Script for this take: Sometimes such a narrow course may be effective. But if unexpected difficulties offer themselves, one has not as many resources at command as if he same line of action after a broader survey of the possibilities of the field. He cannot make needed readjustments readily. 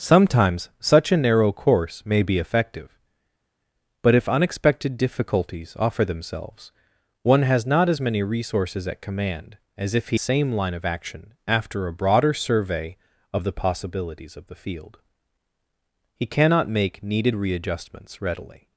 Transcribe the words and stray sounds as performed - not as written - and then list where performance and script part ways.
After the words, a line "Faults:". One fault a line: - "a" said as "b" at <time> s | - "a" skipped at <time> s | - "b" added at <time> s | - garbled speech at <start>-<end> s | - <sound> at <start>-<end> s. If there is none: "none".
Sometimes such a narrow course may be effective. But if unexpected difficulties offer themselves, one has not as many resources at command as if he same line of action after a broader survey of the possibilities of the field. He cannot make needed readjustments readily.
Faults:
none